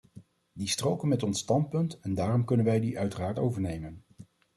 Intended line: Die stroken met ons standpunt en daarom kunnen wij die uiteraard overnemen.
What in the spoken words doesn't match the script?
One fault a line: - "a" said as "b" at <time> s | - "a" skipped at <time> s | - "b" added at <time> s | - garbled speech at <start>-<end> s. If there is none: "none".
none